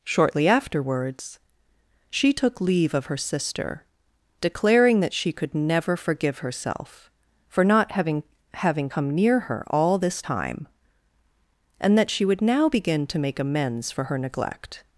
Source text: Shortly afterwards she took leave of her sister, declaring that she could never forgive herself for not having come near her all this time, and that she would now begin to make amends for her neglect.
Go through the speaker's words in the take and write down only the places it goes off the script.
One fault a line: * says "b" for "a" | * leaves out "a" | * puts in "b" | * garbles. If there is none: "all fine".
* puts in "having"